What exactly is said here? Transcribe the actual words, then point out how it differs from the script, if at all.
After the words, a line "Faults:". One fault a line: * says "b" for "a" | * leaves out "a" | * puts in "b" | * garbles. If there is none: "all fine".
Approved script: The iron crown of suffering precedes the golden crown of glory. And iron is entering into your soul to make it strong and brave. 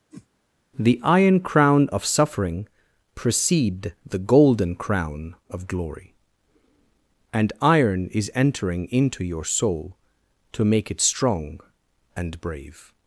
The iron crown of suffering precede the golden crown of glory. And iron is entering into your soul to make it strong and brave.
Faults:
* says "precede" for "precedes"